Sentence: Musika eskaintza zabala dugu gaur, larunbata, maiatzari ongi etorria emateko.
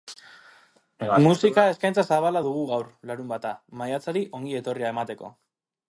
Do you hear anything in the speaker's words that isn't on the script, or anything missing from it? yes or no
no